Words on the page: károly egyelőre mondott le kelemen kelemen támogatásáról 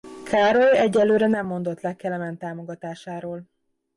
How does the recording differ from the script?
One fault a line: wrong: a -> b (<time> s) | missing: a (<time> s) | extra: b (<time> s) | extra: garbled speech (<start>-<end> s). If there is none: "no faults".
extra: nem (1.3 s)
missing: kelemen (2.4 s)